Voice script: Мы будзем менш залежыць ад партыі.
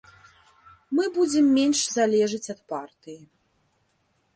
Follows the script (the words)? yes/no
yes